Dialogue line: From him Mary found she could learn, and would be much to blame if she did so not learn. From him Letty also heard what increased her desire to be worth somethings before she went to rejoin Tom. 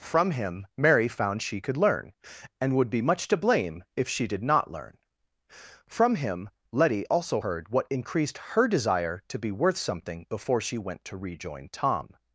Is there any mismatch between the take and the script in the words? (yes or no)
yes